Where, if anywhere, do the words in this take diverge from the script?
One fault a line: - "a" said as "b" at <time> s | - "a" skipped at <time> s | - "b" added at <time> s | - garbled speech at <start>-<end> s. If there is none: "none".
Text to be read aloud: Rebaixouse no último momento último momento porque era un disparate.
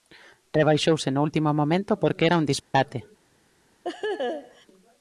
- "último momento" skipped at 2.0 s